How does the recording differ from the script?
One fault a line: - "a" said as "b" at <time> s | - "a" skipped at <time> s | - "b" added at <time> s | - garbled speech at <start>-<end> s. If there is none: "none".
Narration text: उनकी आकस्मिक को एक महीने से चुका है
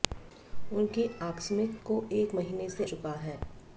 none